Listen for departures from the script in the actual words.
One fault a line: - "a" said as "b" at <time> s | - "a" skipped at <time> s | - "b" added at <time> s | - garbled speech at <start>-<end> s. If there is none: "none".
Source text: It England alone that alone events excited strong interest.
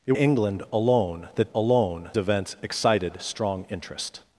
none